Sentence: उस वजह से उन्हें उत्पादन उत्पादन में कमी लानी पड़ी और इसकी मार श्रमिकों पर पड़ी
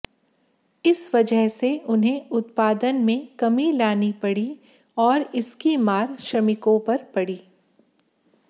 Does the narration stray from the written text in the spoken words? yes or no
yes